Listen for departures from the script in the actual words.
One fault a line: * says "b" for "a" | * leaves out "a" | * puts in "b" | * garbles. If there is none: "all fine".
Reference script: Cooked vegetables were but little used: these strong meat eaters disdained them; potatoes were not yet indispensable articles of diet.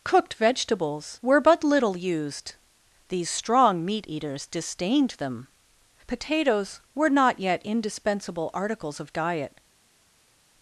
all fine